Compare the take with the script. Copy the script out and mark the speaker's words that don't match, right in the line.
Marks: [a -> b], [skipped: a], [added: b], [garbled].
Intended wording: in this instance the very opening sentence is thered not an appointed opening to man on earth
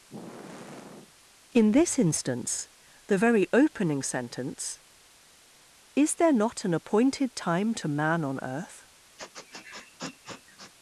in this instance the very opening sentence is [thered -> there] not an appointed [opening -> time] to man on earth